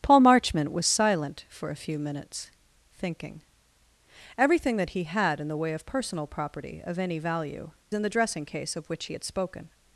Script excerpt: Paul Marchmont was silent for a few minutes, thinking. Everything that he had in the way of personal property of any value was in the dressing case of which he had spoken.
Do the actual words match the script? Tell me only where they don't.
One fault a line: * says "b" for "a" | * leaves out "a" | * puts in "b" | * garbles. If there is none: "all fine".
* leaves out "was"